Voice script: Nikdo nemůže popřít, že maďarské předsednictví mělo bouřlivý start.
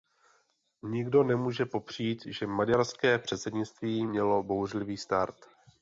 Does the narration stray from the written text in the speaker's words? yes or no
no